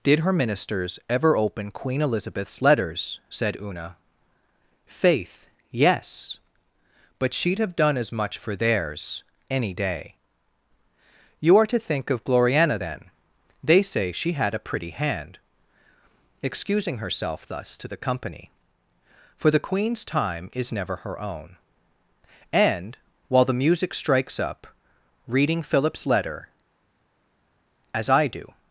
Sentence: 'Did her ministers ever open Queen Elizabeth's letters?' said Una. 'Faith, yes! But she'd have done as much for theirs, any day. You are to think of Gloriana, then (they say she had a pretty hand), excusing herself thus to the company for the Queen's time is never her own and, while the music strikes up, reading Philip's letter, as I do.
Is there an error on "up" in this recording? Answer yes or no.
no